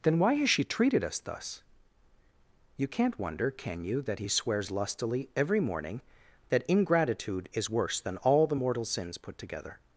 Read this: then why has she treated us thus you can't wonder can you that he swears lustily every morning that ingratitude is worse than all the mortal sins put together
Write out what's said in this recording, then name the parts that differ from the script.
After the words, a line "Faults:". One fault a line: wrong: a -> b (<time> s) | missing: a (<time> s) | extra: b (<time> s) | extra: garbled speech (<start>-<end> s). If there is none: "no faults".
then why has she treated us thus you can't wonder can you that he swears lustily every morning that ingratitude is worse than all the mortal sins put together
Faults:
no faults